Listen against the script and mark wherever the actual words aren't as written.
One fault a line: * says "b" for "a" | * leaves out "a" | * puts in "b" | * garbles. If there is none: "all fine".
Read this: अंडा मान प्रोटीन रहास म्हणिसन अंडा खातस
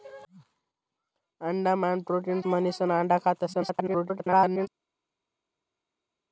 * leaves out "रहास"
* garbles